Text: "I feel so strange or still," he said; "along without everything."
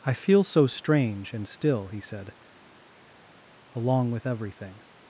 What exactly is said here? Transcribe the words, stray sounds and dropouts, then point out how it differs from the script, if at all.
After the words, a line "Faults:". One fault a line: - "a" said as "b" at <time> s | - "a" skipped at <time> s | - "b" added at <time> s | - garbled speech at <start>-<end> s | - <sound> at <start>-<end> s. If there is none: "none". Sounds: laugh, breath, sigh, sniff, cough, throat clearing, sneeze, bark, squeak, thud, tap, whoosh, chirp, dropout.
"I feel so strange and still," he said; "along with everything."
Faults:
- "or" said as "and" at 1.3 s
- "without" said as "with" at 4.1 s